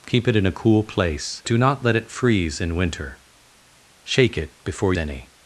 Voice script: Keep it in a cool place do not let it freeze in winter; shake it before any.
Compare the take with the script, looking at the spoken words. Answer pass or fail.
pass